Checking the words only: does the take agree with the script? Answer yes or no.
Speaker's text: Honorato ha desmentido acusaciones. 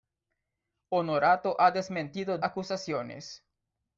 yes